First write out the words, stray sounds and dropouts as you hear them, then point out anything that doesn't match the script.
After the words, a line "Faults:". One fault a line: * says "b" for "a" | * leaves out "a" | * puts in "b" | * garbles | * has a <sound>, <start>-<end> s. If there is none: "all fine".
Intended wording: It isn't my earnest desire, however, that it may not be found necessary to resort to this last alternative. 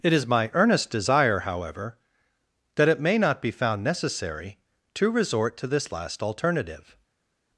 It is my earnest desire, however, that it may not be found necessary to resort to this last alternative.
Faults:
* says "is" for "isn't"